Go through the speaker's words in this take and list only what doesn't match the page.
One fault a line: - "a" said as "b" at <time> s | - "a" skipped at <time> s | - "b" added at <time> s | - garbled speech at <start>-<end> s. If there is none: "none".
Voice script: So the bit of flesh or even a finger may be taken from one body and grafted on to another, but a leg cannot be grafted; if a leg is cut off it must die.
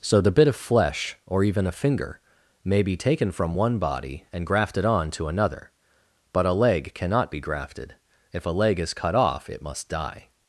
none